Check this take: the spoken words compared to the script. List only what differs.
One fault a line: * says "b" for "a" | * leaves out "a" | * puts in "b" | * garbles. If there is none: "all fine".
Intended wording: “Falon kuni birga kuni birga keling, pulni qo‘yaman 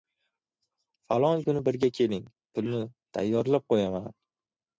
* leaves out "kuni birga"
* puts in "tayyorlab"